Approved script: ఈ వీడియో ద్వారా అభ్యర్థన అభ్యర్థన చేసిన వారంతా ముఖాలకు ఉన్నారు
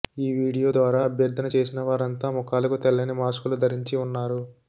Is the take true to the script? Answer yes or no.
no